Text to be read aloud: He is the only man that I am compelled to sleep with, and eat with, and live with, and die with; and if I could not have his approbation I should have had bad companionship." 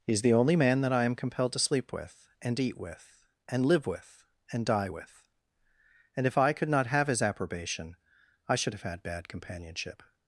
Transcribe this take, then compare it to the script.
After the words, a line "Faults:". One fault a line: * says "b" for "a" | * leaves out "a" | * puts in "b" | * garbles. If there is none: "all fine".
He is the only man that I am compelled to sleep with, and eat with, and live with, and die with; and if I could not have his approbation I should have had bad companionship."
Faults:
all fine